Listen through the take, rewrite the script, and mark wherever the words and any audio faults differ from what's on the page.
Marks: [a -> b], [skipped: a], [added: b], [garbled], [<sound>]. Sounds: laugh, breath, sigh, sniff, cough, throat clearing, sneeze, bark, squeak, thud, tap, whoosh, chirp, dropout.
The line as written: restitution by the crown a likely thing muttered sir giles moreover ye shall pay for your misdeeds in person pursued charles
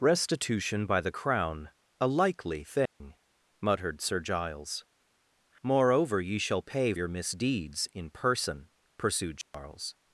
restitution by the crown a likely thing [dropout] muttered sir giles moreover ye shall pay [skipped: for] your misdeeds in person pursued charles [dropout]